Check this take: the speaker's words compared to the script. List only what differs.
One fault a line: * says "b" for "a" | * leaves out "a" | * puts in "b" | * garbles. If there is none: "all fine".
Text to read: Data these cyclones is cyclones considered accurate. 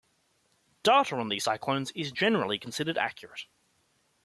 * puts in "on"
* says "generally" for "cyclones"